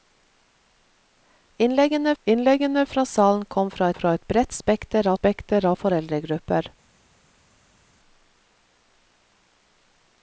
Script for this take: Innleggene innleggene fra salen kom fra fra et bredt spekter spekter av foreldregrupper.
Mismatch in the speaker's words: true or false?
false